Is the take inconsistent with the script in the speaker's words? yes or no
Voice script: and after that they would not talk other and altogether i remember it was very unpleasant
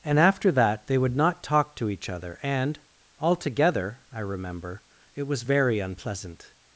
yes